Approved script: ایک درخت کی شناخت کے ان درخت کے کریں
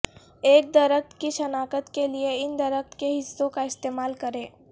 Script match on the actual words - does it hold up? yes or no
no